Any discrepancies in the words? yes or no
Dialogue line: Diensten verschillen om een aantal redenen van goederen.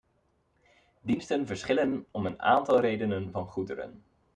no